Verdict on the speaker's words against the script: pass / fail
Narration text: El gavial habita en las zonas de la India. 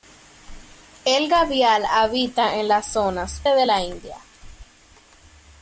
pass